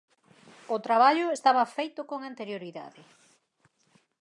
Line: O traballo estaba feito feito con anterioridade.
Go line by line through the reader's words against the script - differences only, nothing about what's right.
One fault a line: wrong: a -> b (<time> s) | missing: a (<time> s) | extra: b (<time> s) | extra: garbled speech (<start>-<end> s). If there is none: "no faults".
missing: feito (2.0 s)